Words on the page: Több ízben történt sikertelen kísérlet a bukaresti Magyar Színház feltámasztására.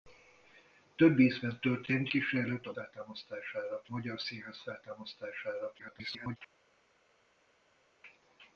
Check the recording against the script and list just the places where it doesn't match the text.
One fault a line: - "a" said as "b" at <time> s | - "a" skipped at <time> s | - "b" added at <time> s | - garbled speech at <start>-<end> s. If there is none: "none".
- "sikertelen" skipped at 2.1 s
- "bukaresti" said as "feltámasztására" at 2.7 s
- garbled speech at 5.8-6.4 s